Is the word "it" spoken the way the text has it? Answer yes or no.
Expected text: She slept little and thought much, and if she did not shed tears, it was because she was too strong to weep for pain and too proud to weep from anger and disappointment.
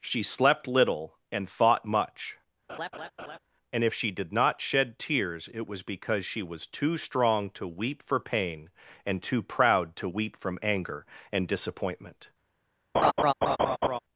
yes